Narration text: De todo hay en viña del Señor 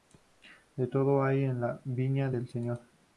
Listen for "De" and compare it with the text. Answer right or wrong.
right